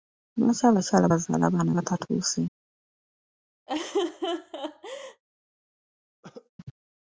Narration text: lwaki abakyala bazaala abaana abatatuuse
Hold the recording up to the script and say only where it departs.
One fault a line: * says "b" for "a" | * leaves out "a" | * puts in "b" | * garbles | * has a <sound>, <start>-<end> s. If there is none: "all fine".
* has a laugh, 3.7-5.2 s
* has a cough, 6.2-6.5 s